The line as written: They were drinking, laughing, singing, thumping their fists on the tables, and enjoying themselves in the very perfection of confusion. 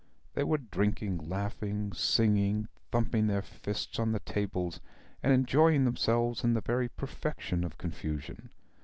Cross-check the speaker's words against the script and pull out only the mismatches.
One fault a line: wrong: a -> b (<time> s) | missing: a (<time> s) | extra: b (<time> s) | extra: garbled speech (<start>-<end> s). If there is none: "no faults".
no faults